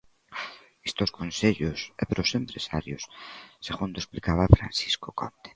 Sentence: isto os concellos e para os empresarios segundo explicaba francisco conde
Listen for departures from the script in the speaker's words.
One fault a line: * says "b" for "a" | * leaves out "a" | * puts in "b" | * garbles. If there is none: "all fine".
all fine